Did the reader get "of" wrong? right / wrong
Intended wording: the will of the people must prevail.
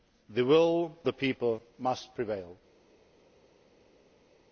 wrong